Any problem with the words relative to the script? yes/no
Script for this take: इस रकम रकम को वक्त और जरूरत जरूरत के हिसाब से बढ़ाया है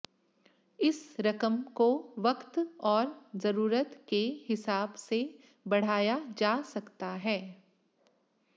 yes